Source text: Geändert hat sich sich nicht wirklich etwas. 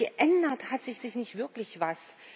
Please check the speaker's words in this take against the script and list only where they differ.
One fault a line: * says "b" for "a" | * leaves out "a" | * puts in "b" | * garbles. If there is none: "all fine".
all fine